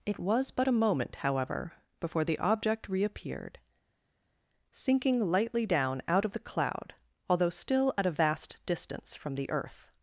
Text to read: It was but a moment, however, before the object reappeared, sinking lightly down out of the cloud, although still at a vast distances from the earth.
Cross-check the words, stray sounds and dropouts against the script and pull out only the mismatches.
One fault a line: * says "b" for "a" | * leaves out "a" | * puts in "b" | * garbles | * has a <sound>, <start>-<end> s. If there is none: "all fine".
* says "distance" for "distances"